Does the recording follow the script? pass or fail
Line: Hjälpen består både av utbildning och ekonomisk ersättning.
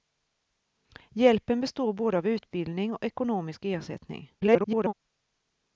fail